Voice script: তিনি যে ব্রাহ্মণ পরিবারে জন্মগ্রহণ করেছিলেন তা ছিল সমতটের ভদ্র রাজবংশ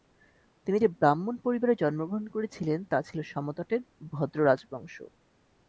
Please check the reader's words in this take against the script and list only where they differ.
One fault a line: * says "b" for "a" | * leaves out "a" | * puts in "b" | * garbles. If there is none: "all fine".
all fine